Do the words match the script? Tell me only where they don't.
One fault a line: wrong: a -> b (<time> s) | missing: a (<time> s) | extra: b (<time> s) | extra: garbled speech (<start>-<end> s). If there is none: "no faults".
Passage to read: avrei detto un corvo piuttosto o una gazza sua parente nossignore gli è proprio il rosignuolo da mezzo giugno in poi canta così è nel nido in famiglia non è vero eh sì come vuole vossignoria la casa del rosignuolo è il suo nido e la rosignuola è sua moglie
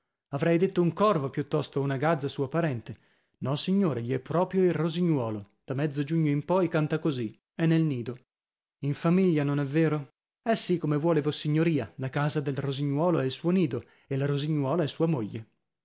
no faults